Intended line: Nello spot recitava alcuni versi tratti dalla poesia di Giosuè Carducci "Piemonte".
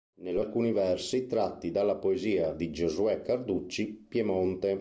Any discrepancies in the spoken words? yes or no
yes